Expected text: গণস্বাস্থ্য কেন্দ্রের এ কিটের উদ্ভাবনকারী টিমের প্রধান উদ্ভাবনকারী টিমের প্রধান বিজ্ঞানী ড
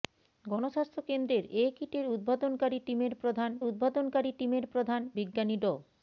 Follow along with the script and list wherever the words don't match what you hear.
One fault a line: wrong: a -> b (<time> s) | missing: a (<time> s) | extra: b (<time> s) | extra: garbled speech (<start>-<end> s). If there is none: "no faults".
no faults